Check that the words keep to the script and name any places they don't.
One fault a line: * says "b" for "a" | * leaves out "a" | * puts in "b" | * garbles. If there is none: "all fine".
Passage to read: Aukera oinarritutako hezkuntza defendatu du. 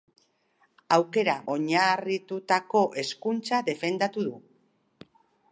all fine